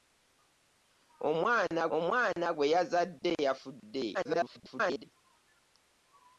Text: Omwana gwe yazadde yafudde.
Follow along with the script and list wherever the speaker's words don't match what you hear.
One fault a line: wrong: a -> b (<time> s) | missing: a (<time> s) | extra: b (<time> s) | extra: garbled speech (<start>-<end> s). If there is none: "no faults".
extra: omwana (2.0 s)
extra: garbled speech (4.1-5.0 s)